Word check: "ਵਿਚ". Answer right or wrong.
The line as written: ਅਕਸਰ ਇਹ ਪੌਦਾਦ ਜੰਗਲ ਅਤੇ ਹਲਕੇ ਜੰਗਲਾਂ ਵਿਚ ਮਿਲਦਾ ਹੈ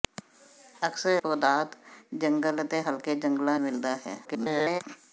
wrong